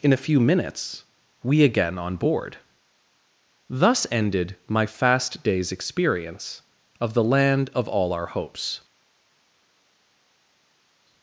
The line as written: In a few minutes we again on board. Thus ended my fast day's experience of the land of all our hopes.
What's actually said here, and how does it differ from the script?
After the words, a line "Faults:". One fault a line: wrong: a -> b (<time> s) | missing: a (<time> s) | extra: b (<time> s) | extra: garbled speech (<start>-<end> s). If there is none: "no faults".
In a few minutes we again on board. Thus ended my fast day's experience of the land of all our hopes.
Faults:
no faults